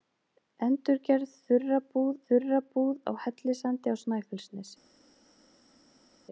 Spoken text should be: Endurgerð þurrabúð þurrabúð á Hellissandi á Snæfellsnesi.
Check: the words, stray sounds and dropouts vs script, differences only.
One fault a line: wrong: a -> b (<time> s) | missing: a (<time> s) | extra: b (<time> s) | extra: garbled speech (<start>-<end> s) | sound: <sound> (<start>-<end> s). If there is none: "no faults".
no faults